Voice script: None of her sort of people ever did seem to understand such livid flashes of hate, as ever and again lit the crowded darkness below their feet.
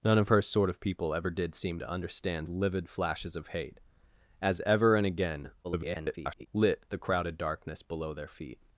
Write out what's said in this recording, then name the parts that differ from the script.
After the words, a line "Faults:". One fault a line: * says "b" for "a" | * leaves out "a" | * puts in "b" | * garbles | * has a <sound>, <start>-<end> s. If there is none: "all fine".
None of her sort of people ever did seem to understand livid flashes of hate, as ever and again [garbled] lit the crowded darkness below their feet.
Faults:
* leaves out "such"
* garbles